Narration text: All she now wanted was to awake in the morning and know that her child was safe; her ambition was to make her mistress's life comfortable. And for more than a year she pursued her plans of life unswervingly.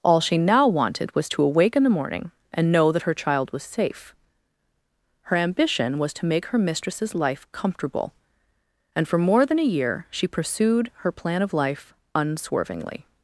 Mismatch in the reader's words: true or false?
true